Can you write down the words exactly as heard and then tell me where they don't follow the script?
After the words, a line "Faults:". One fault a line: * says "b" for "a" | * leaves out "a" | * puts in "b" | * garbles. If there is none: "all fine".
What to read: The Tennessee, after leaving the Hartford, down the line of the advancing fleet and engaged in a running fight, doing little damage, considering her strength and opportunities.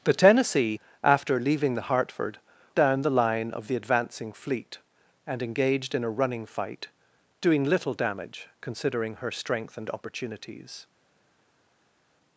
The Tennessee, after leaving the Hartford, down the line of the advancing fleet and engaged in a running fight, doing little damage, considering her strength and opportunities.
Faults:
all fine